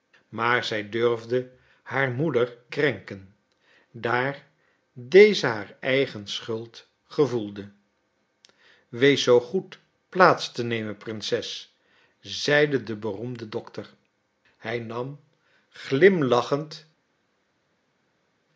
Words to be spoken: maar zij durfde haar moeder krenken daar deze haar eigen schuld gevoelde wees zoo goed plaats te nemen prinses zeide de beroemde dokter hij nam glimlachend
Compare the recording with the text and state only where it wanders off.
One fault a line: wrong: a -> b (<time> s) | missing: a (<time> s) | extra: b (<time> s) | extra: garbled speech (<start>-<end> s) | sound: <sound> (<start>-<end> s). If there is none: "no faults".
no faults